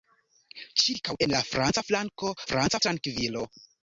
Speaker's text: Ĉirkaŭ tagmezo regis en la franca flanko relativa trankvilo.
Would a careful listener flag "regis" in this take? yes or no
yes